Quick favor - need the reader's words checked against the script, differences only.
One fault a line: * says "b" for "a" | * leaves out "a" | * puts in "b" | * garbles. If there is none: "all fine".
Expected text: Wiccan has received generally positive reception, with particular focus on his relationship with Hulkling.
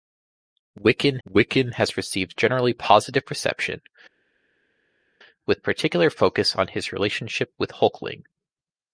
* puts in "wiccan"